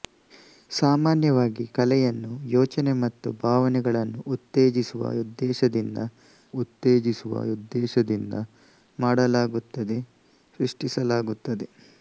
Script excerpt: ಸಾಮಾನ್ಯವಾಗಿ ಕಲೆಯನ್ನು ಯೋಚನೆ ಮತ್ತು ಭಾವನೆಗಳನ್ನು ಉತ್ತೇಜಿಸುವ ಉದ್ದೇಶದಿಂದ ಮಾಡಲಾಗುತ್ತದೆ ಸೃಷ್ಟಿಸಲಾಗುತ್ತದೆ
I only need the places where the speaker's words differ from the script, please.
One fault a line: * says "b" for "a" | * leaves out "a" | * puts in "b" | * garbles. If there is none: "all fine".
* puts in "ಉತ್ತೇಜಿಸುವ ಉದ್ದೇಶದಿಂದ"